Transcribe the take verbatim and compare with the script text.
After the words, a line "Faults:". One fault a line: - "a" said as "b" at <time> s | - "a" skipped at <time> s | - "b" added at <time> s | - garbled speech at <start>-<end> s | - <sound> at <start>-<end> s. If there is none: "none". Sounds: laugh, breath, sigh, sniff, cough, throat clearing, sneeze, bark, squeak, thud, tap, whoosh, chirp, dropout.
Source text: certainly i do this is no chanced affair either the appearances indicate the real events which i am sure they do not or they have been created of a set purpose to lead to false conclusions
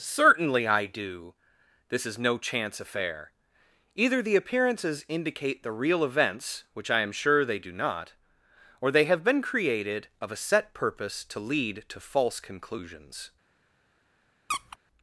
certainly i do this is no chance affair either the appearances indicate the real events which i am sure they do not or they have been created of a set purpose to lead to false conclusions
Faults:
- "chanced" said as "chance" at 2.4 s
- squeak at 14.5-14.8 s